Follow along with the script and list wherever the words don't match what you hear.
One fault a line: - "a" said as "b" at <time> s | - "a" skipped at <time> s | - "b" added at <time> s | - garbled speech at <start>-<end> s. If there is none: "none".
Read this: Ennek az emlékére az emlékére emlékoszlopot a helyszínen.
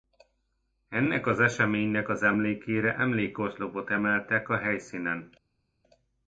- "emlékére" said as "eseménynek" at 1.4 s
- "emeltek" added at 3.9 s